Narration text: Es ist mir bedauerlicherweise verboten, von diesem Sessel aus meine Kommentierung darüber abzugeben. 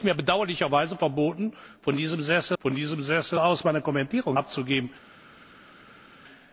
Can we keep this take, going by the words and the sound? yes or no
no